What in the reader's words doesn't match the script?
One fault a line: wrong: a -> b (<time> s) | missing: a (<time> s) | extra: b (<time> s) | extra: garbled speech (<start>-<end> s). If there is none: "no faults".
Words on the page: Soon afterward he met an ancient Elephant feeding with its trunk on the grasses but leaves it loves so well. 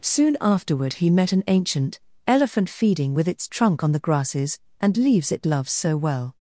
wrong: but -> and (4.8 s)